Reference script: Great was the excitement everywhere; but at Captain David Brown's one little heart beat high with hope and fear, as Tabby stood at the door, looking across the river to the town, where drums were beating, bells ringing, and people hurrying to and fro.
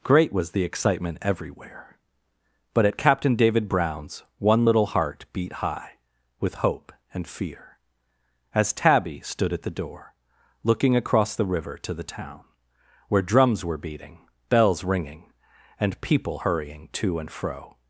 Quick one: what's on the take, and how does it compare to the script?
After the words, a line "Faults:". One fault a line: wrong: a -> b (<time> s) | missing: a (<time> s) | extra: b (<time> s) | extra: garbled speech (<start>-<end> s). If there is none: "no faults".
Great was the excitement everywhere; but at Captain David Brown's one little heart beat high with hope and fear, as Tabby stood at the door, looking across the river to the town, where drums were beating, bells ringing, and people hurrying to and fro.
Faults:
no faults